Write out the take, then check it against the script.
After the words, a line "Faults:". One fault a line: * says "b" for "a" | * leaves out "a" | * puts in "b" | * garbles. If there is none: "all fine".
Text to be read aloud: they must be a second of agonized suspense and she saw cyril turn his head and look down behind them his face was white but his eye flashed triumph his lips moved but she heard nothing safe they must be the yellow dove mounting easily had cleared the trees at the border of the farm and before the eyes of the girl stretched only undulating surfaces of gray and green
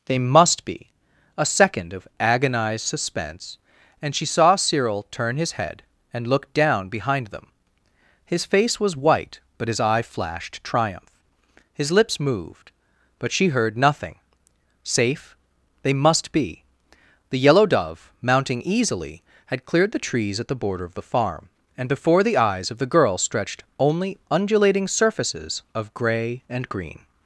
they must be a second of agonized suspense and she saw cyril turn his head and look down behind them his face was white but his eye flashed triumph his lips moved but she heard nothing safe they must be the yellow dove mounting easily had cleared the trees at the border of the farm and before the eyes of the girl stretched only undulating surfaces of gray and green
Faults:
all fine